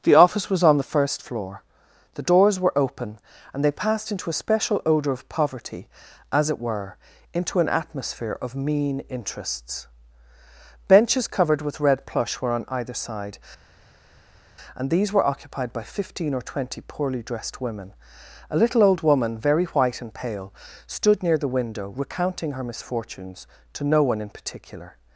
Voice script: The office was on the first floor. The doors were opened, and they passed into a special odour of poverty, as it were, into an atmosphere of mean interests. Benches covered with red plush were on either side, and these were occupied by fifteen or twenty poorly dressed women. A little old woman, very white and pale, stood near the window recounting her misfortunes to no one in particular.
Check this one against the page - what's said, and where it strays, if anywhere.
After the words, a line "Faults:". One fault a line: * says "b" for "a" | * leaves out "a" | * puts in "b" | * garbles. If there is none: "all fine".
The office was on the first floor. The doors were open, and they passed into a special odour of poverty, as it were, into an atmosphere of mean interests. Benches covered with red plush were on either side, and these were occupied by fifteen or twenty poorly dressed women. A little old woman, very white and pale, stood near the window recounting her misfortunes to no one in particular.
Faults:
* says "open" for "opened"